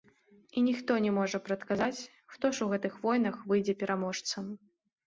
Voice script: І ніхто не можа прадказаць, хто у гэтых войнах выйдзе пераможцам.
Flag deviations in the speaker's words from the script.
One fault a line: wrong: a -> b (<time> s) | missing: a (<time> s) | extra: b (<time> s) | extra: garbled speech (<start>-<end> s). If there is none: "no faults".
extra: ж (2.5 s)